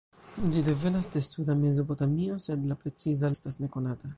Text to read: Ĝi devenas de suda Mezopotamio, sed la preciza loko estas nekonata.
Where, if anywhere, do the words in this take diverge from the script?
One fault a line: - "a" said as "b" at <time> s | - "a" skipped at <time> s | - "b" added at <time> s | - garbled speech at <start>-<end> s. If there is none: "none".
- "loko" skipped at 3.3 s